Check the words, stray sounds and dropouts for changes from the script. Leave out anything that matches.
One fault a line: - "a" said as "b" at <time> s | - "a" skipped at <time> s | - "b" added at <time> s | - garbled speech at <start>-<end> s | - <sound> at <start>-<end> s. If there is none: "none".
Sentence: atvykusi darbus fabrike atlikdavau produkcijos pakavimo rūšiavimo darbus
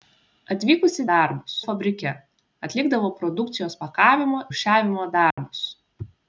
- dropout at 5.3-5.4 s